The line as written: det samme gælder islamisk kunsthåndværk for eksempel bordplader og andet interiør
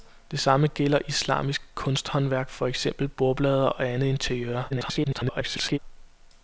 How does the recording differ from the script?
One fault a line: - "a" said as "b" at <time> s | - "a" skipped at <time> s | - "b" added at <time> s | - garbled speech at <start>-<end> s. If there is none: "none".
- garbled speech at 4.7-5.8 s